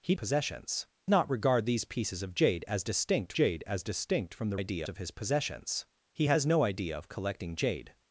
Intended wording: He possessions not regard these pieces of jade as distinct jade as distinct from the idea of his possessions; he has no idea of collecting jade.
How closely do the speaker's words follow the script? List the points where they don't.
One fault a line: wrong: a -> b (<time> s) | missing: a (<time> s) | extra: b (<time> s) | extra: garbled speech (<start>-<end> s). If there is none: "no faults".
no faults